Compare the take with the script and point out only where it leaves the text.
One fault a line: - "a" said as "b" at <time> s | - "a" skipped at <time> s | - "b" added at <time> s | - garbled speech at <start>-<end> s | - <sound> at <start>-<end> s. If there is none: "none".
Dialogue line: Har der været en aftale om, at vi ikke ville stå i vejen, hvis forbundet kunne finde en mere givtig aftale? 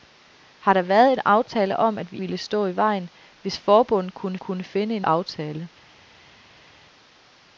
- "ikke" skipped at 2.2 s
- "kunne" added at 4.4 s
- "mere givtig" skipped at 5.1 s